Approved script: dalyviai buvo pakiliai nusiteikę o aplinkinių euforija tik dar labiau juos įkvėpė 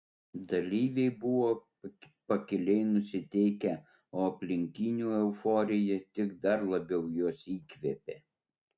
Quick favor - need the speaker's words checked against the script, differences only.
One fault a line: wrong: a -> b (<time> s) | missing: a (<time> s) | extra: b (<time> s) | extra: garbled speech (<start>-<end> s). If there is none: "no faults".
no faults